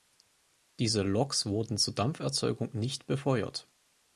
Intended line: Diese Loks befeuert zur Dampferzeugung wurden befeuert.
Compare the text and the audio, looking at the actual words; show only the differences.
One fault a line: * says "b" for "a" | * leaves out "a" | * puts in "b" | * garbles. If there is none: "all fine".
* says "wurden" for "befeuert"
* says "nicht" for "wurden"